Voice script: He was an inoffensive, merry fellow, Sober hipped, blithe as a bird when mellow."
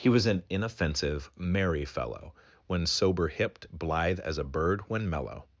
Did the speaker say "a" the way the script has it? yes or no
yes